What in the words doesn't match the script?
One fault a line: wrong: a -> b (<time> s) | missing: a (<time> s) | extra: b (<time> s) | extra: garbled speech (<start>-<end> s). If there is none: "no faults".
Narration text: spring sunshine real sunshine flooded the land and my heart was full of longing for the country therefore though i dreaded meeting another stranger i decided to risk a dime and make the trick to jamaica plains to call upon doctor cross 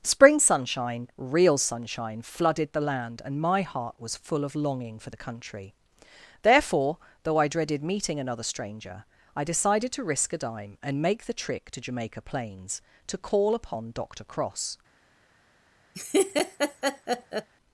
no faults